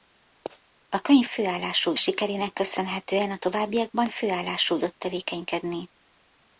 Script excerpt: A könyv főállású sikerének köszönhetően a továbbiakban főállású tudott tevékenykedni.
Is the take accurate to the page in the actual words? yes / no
yes